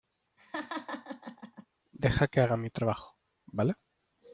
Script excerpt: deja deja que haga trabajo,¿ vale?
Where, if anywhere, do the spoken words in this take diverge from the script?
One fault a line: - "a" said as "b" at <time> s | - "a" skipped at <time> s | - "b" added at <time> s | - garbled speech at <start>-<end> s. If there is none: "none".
- "deja" skipped at 2.3 s
- "mi" added at 2.6 s